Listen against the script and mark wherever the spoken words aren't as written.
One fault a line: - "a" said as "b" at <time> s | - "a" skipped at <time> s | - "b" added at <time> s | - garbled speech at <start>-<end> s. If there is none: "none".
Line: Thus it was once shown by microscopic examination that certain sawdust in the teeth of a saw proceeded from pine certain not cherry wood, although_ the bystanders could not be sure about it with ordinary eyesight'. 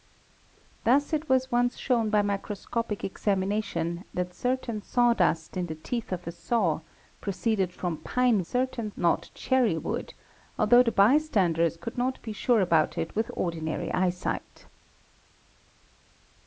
none